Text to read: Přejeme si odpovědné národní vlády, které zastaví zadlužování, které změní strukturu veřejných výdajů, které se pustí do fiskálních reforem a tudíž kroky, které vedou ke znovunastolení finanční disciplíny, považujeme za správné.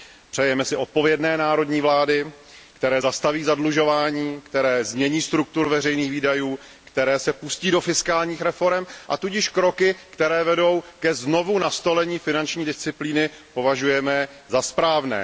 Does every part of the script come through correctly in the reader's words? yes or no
yes